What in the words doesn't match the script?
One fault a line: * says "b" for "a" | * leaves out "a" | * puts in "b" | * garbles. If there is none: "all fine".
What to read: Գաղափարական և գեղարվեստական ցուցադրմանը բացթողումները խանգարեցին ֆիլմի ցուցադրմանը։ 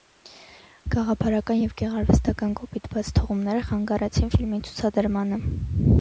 * says "կոպիտ" for "ցուցադրմանը"